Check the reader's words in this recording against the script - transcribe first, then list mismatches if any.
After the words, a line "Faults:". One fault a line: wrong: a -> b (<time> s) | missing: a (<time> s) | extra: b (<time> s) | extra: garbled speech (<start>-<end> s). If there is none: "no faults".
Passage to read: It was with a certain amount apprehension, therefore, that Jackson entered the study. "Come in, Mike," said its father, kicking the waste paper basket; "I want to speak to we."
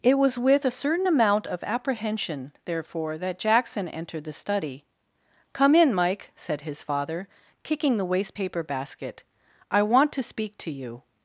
It was with a certain amount of apprehension, therefore, that Jackson entered the study. "Come in, Mike," said his father, kicking the waste paper basket; "I want to speak to you."
Faults:
extra: of (1.5 s)
wrong: its -> his (6.6 s)
wrong: we -> you (10.7 s)